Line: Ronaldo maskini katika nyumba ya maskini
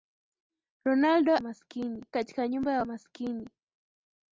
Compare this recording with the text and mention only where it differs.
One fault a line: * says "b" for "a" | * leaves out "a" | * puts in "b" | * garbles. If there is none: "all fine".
all fine